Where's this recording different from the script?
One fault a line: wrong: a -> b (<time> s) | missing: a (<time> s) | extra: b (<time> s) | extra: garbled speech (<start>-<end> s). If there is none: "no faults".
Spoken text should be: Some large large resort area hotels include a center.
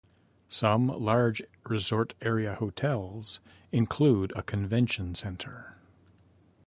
missing: large (1.4 s)
extra: convention (4.4 s)